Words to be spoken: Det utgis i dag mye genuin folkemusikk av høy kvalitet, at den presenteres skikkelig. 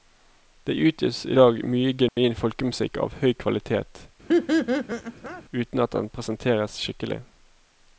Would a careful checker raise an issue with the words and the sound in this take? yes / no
yes